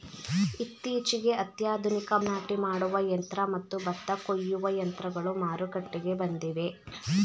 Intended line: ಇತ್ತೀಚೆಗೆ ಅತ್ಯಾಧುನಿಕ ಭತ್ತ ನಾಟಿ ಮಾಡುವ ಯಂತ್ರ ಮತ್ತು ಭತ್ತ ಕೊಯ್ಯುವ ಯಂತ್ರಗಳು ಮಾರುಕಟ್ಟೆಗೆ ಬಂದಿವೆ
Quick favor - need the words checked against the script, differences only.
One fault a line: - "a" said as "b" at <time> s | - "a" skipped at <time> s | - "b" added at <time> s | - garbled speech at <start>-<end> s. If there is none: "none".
- "ಭತ್ತ" skipped at 2.1 s